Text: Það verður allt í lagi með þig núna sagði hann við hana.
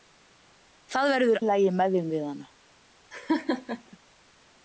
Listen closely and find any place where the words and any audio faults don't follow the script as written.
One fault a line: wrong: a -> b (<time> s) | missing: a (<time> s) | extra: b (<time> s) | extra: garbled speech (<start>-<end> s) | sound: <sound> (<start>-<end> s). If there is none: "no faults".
missing: allt (1.4 s)
missing: núna sagði hann (2.1 s)
sound: laugh (3.1-4.0 s)